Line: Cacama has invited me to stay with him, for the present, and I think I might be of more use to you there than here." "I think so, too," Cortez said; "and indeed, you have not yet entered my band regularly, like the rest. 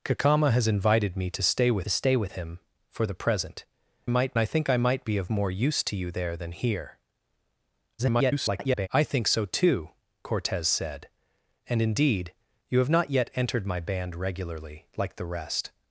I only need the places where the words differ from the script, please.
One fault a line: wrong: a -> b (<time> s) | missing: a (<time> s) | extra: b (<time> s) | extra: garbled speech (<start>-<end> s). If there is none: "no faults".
extra: stay with (1.9 s)
wrong: and -> might (4.1 s)
extra: garbled speech (8.0-8.9 s)